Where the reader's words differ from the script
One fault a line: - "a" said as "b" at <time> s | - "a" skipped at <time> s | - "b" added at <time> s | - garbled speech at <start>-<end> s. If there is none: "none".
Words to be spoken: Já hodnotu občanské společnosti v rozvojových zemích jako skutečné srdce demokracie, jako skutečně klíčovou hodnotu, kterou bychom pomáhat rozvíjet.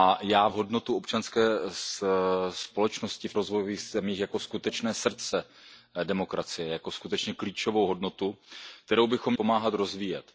none